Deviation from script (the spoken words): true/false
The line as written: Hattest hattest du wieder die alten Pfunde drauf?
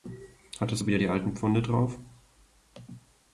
true